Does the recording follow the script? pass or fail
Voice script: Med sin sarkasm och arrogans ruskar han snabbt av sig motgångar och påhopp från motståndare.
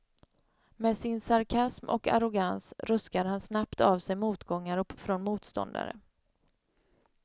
fail